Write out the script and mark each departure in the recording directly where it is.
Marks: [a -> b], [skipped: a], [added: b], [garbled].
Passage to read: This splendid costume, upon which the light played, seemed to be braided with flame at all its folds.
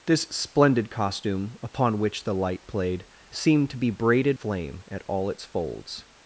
This splendid costume, upon which the light played, seemed to be braided [skipped: with] flame at all its folds.